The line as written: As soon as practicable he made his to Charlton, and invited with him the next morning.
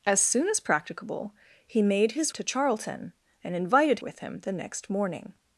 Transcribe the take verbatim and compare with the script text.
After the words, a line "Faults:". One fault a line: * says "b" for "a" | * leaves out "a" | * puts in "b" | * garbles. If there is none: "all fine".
As soon as practicable he made his to Charlton, and invited with him the next morning.
Faults:
all fine